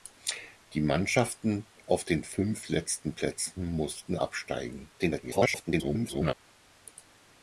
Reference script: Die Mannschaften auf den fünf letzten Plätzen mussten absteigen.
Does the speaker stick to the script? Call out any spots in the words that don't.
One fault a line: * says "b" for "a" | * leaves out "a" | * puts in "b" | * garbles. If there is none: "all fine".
* garbles